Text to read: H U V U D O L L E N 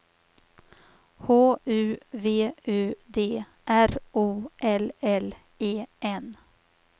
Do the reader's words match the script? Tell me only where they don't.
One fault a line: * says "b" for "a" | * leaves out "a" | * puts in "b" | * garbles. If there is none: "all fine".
* puts in "R"